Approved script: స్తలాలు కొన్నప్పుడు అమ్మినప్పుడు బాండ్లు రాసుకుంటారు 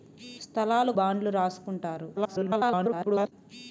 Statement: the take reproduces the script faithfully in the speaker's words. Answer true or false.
false